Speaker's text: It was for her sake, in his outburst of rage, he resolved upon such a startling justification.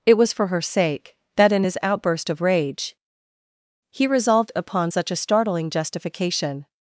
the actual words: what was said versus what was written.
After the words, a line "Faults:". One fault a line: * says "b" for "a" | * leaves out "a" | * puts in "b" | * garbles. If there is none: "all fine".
It was for her sake, that in his outburst of rage, he resolved upon such a startling justification.
Faults:
* puts in "that"